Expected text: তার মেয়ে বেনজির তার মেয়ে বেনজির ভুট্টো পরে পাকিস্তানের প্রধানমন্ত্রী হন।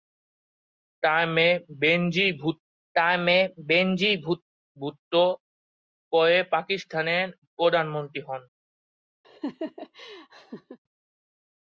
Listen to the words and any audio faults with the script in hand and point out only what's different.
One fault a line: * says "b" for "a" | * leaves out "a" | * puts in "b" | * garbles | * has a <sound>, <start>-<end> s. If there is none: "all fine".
* has a laugh, 9.2-10.8 s